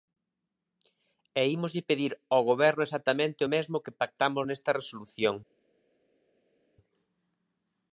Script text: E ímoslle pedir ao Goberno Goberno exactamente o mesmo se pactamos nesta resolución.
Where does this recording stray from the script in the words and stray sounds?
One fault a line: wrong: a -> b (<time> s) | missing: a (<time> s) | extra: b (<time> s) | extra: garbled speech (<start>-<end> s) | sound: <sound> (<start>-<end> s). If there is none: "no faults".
missing: Goberno (2.8 s)
wrong: se -> que (3.8 s)